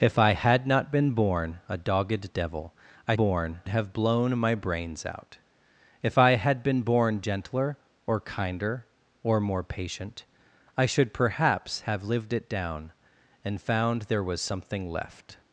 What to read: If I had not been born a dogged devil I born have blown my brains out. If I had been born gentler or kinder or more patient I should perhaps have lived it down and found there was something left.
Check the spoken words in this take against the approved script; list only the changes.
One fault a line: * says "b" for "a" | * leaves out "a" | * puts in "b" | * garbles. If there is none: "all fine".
all fine